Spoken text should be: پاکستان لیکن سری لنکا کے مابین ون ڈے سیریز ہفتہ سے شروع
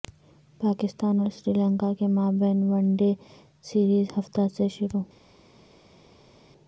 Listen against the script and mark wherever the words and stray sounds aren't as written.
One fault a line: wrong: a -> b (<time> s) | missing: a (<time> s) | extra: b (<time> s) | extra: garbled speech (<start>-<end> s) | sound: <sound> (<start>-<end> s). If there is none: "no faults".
wrong: لیکن -> اور (1.2 s)